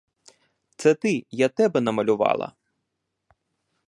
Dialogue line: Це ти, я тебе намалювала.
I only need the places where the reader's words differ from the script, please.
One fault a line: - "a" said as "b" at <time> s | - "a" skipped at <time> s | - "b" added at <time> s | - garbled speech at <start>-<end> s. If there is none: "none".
none